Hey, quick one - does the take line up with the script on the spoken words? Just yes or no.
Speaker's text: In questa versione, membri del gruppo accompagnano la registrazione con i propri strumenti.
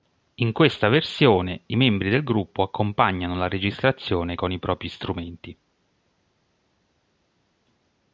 no